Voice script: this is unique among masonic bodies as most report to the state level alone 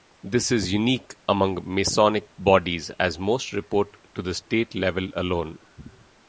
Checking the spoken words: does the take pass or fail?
pass